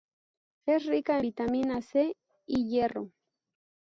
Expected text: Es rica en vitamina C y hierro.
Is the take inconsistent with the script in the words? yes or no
yes